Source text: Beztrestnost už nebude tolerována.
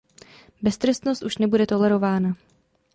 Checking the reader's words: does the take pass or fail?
pass